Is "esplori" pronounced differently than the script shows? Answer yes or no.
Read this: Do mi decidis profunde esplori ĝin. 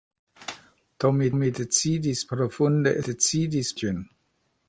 yes